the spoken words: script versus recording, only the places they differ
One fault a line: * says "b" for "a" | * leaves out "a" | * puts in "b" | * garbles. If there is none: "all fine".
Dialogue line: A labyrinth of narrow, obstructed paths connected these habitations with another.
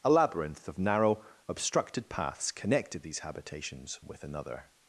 all fine